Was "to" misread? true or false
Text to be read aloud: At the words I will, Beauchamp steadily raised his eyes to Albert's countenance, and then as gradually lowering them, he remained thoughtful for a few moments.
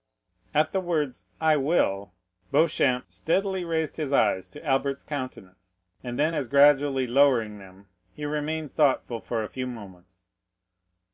false